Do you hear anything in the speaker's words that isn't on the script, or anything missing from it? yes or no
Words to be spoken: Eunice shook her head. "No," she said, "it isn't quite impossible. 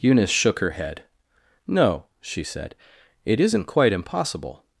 no